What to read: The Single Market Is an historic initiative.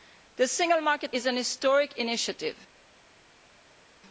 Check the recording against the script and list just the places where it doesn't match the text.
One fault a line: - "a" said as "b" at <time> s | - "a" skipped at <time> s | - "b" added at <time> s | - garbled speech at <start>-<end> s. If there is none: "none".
none